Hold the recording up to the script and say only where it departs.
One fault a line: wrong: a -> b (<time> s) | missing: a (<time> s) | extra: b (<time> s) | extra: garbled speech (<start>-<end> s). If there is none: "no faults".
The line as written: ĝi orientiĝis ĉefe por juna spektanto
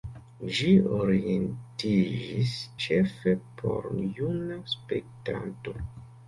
no faults